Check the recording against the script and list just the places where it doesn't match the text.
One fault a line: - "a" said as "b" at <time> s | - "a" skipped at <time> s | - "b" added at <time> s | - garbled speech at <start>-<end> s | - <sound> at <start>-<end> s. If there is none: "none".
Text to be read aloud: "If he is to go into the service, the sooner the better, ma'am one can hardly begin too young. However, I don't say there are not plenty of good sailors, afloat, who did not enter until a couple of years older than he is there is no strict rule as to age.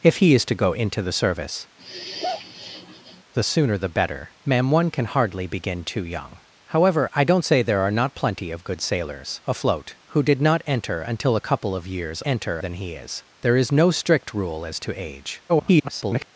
- sigh at 1.8-3.2 s
- "older" said as "enter" at 12.2 s
- garbled speech at 15.5-16.3 s